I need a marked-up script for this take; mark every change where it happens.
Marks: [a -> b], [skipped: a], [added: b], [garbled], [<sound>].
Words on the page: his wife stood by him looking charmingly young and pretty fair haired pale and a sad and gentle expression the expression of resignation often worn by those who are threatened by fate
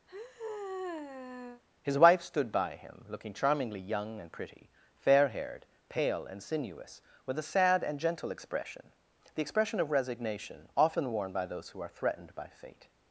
[sigh] his wife stood by him looking charmingly young and pretty fair haired pale and [added: sinuous with] a sad and gentle expression the expression of resignation often worn by those who are threatened by fate